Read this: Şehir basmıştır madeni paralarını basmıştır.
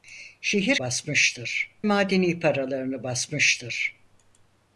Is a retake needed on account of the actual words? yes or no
no